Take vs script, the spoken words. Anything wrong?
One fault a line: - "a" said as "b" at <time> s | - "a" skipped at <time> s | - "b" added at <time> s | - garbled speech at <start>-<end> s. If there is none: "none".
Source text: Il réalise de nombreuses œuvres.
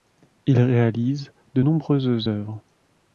none